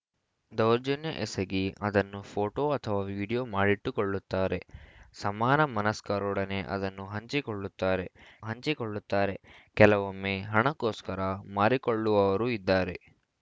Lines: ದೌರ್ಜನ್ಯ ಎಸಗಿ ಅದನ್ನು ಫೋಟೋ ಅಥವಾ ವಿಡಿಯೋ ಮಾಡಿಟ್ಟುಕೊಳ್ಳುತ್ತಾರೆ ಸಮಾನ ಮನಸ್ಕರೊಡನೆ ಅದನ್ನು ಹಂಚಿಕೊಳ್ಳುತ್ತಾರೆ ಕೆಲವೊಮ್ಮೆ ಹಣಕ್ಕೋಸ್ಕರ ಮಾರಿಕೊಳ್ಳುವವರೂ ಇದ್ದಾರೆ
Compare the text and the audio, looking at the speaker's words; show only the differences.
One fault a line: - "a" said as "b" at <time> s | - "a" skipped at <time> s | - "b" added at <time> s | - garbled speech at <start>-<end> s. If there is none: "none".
- "ಹಂಚಿಕೊಳ್ಳುತ್ತಾರೆ" added at 8.4 s